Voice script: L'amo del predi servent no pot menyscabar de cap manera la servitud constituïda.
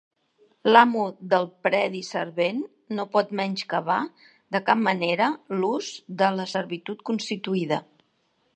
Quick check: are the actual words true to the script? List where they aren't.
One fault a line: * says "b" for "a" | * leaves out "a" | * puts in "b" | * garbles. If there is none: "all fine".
* puts in "l'ús de"